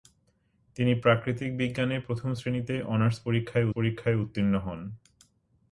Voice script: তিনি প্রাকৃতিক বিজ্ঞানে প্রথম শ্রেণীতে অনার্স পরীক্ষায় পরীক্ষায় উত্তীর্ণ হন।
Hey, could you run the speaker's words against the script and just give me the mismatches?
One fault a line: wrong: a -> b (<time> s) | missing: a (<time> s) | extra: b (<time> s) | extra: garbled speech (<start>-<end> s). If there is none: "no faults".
no faults